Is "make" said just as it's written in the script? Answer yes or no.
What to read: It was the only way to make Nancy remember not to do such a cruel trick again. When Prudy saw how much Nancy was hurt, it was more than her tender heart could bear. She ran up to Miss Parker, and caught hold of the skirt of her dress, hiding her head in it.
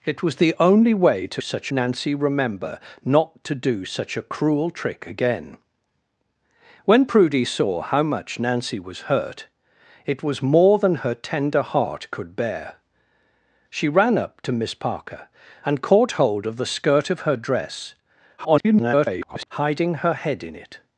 no